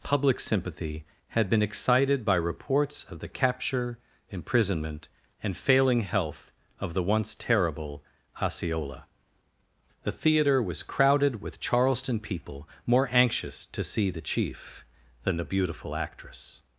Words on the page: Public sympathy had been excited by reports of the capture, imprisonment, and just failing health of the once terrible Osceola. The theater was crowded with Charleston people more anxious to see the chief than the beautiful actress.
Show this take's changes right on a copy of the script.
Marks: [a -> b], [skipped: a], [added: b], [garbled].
Public sympathy had been excited by reports of the capture, imprisonment, and [skipped: just] failing health of the once terrible Osceola. The theater was crowded with Charleston people more anxious to see the chief than the beautiful actress.